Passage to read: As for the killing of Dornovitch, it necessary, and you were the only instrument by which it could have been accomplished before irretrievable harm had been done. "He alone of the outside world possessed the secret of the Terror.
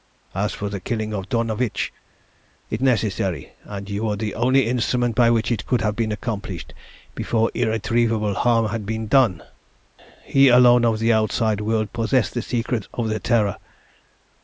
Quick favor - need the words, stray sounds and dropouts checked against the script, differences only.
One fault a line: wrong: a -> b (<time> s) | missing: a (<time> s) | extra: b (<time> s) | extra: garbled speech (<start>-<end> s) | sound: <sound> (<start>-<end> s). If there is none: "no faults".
no faults